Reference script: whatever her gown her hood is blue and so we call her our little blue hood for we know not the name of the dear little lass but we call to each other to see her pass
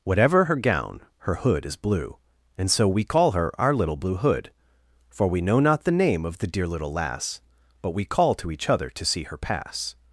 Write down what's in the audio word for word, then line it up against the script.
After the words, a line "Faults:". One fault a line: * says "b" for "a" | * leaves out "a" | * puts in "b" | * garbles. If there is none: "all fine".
whatever her gown her hood is blue and so we call her our little blue hood for we know not the name of the dear little lass but we call to each other to see her pass
Faults:
all fine